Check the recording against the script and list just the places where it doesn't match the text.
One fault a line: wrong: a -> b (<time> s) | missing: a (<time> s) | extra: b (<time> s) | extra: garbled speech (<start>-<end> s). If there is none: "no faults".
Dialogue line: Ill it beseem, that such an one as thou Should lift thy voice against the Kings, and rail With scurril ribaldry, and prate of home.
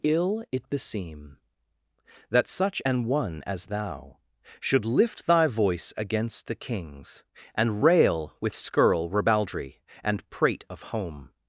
no faults